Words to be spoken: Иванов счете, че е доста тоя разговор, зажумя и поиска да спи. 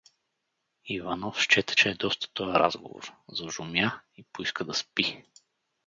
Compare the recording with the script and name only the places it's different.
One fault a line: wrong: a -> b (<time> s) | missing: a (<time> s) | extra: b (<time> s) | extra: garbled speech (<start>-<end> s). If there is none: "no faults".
no faults